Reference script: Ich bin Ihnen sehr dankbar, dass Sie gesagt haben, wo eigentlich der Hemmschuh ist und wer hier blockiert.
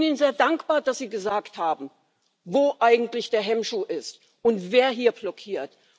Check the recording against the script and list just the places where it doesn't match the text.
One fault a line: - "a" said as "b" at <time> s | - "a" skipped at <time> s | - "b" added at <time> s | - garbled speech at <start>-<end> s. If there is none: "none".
none